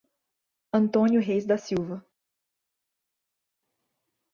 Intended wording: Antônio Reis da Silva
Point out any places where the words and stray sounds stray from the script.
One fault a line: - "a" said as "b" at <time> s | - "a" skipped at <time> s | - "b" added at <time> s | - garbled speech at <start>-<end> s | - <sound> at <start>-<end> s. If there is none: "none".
none